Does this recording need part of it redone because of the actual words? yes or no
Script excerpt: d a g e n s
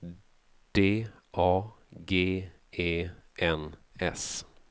no